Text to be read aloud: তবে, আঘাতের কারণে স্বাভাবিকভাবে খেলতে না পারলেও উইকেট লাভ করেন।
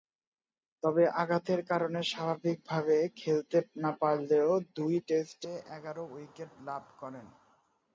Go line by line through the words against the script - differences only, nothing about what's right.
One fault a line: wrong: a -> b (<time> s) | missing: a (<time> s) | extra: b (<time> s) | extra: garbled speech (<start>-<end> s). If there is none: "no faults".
extra: দুই টেস্টে এগারো (4.8 s)